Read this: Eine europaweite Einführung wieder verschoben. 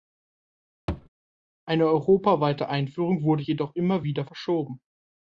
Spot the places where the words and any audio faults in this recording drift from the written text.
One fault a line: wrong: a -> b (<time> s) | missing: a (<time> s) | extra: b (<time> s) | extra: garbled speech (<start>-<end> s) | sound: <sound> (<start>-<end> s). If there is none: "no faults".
sound: thud (0.9-1.1 s)
extra: wurde jedoch immer (3.2 s)